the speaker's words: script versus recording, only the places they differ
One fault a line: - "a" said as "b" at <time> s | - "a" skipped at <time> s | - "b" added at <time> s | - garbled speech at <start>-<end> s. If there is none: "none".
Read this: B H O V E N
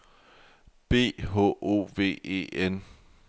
none